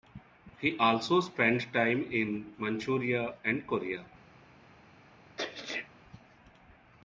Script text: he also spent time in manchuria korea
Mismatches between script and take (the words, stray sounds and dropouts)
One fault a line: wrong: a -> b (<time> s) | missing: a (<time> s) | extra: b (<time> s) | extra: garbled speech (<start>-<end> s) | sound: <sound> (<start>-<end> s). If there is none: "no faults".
extra: and (3.4 s)
sound: sneeze (5.4-5.9 s)